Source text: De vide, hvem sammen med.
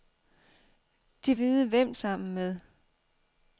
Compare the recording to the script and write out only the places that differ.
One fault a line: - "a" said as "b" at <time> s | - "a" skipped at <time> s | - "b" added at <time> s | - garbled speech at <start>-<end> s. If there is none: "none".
none